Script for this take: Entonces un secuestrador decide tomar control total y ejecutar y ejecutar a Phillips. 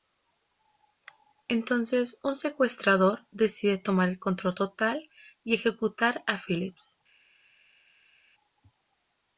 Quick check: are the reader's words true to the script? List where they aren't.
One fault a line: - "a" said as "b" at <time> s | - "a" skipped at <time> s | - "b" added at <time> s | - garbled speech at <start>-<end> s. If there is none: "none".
- "el" added at 4.1 s
- "y ejecutar" skipped at 6.2 s